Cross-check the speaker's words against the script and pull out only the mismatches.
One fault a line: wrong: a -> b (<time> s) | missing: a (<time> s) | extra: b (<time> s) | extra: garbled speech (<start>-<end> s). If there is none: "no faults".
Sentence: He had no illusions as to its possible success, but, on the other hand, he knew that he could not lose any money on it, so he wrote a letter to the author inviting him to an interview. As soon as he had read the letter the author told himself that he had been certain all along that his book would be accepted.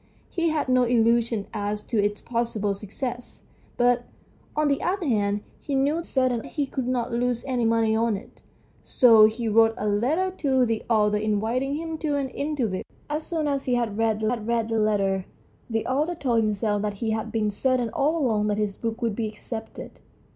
wrong: that -> certain (6.0 s)
extra: had read the (14.3 s)